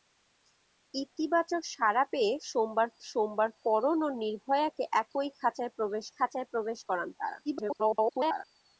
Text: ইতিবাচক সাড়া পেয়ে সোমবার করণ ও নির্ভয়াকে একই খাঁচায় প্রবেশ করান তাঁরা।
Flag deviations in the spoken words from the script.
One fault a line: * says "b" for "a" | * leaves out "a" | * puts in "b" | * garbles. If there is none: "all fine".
* puts in "সোমবার"
* puts in "খাঁচায় প্রবেশ"
* garbles